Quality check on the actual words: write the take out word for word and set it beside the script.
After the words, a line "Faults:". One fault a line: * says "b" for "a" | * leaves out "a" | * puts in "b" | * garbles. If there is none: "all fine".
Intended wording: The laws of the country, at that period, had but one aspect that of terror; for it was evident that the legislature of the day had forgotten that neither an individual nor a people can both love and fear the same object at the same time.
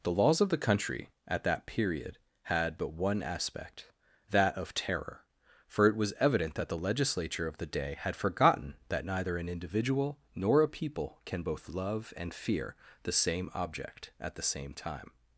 The laws of the country, at that period, had but one aspect that of terror; for it was evident that the legislature of the day had forgotten that neither an individual nor a people can both love and fear the same object at the same time.
Faults:
all fine